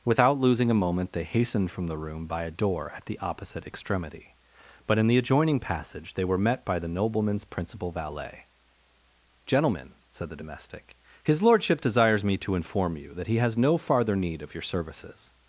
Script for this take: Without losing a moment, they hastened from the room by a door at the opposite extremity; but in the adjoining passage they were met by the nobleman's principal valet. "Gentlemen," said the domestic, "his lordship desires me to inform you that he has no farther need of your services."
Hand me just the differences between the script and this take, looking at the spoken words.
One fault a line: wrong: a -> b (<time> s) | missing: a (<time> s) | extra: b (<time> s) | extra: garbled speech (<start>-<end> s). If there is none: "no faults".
no faults